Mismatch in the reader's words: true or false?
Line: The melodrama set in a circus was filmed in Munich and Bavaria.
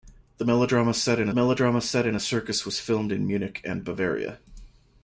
true